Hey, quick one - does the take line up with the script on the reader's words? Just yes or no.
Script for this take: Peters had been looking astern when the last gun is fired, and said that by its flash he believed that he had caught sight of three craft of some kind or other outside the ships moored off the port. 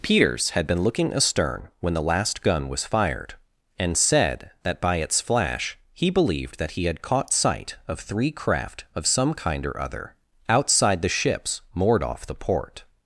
no